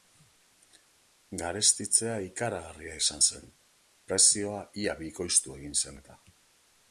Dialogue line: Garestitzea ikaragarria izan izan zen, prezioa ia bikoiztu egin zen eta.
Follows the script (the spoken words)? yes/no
no